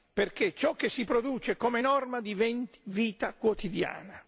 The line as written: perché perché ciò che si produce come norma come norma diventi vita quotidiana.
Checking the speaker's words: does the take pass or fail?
fail